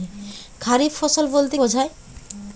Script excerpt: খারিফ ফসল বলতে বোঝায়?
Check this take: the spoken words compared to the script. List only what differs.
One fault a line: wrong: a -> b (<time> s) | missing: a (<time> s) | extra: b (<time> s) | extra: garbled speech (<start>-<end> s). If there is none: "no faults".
no faults